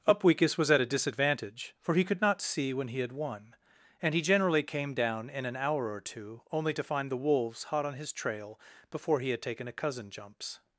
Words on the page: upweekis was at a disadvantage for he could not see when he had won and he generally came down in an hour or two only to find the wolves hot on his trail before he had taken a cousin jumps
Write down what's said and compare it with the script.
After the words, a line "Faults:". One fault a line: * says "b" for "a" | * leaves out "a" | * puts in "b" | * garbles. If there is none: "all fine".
upweekis was at a disadvantage for he could not see when he had won and he generally came down in an hour or two only to find the wolves hot on his trail before he had taken a cousin jumps
Faults:
all fine